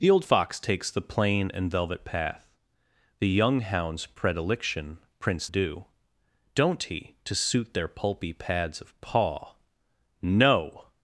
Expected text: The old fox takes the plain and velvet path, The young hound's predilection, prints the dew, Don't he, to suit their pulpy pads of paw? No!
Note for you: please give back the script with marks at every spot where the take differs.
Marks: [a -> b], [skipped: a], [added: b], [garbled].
The old fox takes the plain and velvet path, The young hound's predilection, prints [skipped: the] dew, Don't he, to suit their pulpy pads of paw? No!